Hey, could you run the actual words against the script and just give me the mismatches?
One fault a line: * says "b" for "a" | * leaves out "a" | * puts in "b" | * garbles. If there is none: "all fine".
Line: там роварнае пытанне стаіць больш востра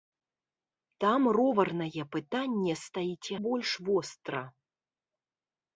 all fine